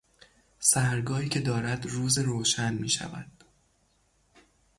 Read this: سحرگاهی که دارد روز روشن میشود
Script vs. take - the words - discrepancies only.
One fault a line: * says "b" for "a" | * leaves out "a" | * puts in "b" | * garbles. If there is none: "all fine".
all fine